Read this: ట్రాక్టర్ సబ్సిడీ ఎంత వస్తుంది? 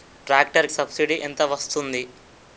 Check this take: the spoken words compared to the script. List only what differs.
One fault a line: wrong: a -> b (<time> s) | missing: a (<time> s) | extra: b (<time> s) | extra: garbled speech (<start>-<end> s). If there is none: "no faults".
no faults